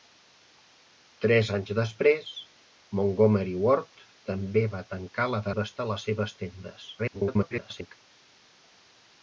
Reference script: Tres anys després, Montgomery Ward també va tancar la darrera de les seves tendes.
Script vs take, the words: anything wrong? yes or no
yes